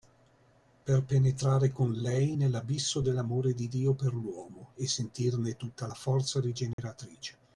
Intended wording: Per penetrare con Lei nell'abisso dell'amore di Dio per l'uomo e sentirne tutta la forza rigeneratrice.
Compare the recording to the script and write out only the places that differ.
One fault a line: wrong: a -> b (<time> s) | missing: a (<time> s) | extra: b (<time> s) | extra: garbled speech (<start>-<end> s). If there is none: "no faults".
no faults